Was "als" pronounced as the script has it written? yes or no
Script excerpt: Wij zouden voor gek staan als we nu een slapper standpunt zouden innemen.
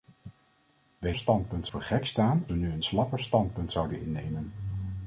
no